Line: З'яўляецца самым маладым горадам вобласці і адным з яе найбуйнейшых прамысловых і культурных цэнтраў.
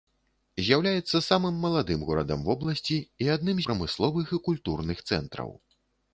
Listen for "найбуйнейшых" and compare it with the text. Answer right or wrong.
wrong